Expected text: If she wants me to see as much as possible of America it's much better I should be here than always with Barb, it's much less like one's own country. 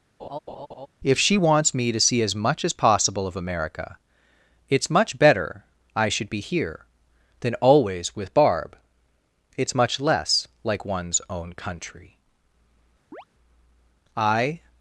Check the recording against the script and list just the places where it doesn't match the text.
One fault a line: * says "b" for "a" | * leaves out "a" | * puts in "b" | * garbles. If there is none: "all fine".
* puts in "I"